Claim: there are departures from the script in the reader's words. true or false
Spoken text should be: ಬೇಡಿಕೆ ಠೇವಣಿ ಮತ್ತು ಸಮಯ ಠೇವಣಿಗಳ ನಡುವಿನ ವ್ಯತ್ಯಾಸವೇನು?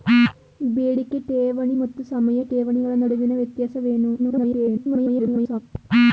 true